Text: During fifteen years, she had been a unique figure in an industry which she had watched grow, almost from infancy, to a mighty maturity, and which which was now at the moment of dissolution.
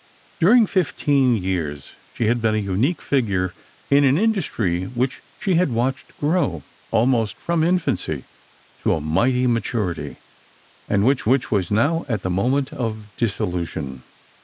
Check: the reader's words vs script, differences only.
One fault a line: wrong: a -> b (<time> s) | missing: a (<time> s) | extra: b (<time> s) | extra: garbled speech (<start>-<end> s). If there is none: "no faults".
no faults